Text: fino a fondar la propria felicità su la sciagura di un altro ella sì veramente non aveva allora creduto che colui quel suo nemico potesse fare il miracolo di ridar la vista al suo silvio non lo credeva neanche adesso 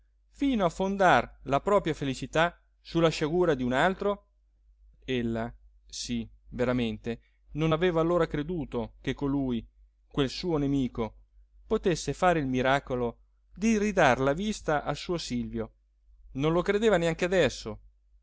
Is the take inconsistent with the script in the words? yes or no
no